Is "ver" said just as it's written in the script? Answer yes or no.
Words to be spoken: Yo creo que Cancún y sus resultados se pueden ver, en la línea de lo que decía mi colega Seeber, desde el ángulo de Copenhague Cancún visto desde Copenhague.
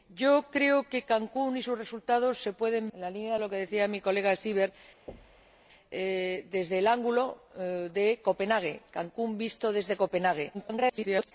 no